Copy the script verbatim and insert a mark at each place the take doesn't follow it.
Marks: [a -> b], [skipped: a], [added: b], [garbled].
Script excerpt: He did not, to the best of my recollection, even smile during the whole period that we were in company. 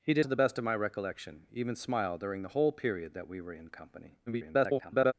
He did [skipped: not,] to the best of my recollection, even smile during the whole period that we were in company. [garbled]